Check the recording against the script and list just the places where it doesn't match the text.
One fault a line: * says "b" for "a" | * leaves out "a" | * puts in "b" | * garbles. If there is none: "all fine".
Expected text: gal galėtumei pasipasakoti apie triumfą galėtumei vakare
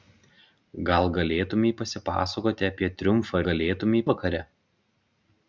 all fine